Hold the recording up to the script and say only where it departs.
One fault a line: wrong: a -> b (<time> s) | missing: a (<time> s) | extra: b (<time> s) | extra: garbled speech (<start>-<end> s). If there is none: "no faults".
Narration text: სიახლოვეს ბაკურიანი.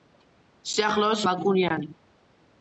no faults